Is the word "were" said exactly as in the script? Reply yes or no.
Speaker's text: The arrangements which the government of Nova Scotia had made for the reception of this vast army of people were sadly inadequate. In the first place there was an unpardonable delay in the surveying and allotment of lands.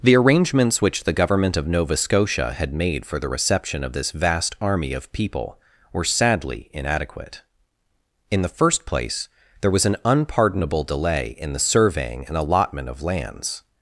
yes